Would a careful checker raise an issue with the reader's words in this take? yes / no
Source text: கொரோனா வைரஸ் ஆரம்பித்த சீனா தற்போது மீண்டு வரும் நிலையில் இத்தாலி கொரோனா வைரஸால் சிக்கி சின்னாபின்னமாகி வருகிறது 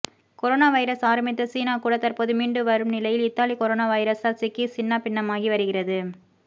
yes